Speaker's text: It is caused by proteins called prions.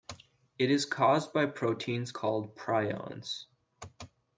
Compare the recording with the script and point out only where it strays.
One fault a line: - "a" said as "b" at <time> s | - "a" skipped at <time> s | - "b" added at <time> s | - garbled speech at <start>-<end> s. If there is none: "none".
none